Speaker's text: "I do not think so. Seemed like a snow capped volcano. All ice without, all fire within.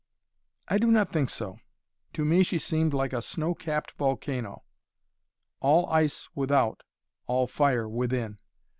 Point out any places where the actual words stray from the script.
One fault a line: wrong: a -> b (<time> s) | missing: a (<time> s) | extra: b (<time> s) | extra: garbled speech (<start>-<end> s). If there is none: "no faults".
extra: To me she (2.1 s)